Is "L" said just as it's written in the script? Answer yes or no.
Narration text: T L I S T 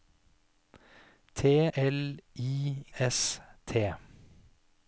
yes